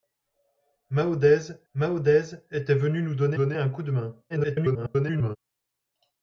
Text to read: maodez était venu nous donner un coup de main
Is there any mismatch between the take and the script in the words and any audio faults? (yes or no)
yes